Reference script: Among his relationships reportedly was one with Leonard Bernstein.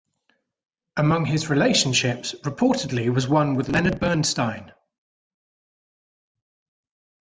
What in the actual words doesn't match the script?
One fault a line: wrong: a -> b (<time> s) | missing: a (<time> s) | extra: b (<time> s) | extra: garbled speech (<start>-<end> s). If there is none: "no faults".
no faults